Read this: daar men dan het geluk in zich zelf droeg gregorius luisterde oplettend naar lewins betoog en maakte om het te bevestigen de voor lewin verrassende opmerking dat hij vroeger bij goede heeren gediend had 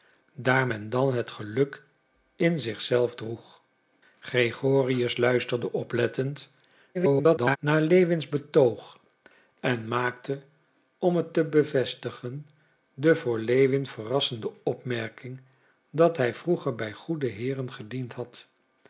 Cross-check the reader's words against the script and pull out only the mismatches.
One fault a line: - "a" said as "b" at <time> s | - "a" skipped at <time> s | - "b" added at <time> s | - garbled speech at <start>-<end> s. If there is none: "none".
- garbled speech at 6.9-7.6 s